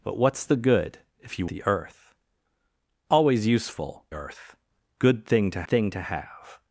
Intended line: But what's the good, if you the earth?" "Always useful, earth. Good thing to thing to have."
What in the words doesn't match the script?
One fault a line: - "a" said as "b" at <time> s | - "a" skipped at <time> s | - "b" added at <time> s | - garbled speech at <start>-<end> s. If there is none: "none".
none